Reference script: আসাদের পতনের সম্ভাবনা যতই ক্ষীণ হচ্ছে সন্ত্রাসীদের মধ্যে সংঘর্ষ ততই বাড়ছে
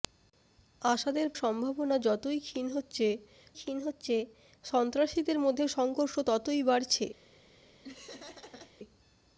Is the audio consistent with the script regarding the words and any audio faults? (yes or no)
no